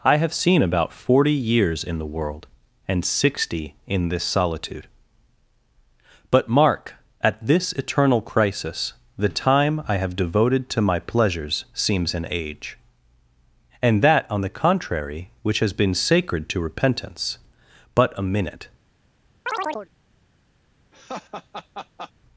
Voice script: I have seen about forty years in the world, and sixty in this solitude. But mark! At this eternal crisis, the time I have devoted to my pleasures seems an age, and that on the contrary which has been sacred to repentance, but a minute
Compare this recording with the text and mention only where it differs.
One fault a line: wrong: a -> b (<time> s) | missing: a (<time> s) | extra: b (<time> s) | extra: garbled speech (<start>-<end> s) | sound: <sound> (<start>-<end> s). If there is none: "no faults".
sound: chirp (19.5-19.9 s)
sound: laugh (20.9-22.1 s)